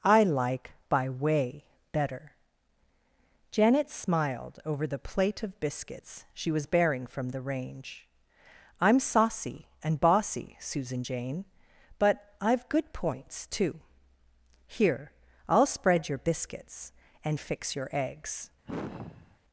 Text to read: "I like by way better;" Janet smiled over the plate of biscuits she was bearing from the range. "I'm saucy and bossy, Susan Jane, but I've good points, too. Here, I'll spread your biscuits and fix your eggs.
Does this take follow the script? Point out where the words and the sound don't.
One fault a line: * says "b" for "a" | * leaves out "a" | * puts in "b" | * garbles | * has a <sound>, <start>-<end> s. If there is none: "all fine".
* has a sigh, 18.6-19.4 s